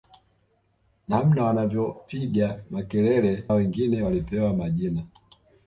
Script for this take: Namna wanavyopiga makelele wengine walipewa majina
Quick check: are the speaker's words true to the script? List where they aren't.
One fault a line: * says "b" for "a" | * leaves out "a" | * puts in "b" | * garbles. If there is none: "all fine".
all fine